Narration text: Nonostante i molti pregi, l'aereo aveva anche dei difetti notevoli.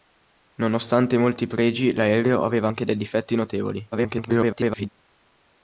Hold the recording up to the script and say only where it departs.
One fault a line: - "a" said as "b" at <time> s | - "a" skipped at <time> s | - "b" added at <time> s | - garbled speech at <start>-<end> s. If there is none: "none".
- garbled speech at 3.9-4.9 s